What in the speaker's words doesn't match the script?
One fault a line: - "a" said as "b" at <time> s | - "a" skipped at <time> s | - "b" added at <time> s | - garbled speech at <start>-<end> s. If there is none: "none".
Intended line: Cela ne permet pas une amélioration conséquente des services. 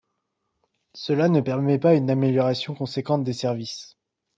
none